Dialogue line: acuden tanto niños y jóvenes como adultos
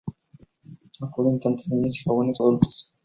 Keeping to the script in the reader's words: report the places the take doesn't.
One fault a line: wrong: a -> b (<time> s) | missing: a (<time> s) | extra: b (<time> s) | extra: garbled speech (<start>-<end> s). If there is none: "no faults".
missing: como (2.4 s)